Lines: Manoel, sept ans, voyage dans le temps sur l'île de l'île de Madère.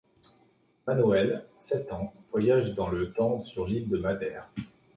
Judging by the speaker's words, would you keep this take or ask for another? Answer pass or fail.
fail